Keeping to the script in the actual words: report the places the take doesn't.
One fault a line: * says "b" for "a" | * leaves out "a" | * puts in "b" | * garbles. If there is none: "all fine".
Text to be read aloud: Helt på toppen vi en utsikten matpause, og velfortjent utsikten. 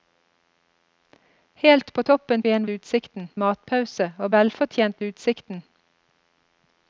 all fine